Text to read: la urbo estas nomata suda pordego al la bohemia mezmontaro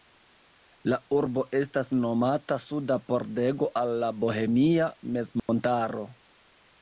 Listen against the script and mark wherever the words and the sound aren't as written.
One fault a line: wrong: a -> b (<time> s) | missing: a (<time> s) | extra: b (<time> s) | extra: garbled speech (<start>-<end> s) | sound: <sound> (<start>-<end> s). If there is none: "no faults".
sound: dropout (5.4-5.5 s)